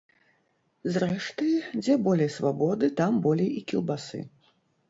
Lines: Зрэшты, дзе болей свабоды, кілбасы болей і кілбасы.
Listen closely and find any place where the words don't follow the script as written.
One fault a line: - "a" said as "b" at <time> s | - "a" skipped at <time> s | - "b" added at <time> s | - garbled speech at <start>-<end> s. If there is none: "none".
- "кілбасы" said as "там" at 3.0 s